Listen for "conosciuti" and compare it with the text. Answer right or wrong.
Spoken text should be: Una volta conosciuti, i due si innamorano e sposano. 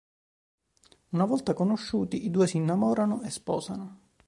right